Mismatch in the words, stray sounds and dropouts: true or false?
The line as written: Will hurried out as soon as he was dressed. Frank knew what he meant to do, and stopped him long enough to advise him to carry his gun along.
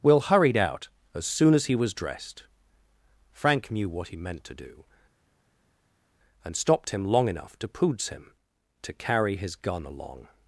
true